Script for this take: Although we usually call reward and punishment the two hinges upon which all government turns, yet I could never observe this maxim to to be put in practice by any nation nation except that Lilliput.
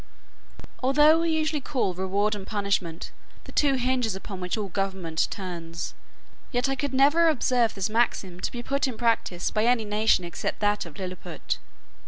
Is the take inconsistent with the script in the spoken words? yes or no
yes